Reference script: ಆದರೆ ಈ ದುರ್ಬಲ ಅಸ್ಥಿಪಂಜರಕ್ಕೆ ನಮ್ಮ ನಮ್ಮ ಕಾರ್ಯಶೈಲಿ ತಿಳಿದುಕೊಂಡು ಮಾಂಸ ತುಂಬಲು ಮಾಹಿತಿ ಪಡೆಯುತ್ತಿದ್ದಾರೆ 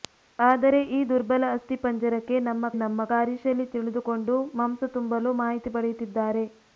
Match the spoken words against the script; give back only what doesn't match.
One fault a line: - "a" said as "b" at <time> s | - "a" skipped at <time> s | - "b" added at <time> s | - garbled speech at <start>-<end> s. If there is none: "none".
none